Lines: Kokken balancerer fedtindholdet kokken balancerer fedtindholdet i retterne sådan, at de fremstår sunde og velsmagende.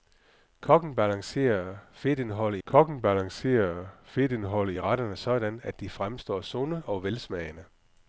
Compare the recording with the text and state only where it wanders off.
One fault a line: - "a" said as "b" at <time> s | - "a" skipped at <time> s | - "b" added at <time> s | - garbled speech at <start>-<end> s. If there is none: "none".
none